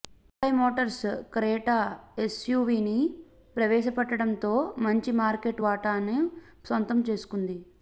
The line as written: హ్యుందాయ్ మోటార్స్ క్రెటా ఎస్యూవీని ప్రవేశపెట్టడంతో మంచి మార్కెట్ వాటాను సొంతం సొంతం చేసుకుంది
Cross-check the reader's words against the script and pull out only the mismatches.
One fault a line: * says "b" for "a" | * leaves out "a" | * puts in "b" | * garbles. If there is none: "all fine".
* leaves out "సొంతం"